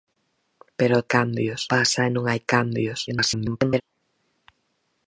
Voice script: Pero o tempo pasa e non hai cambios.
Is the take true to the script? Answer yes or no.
no